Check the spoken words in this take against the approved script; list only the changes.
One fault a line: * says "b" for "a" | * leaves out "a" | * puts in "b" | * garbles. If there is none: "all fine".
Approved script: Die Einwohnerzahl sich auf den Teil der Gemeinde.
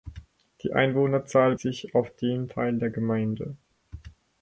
all fine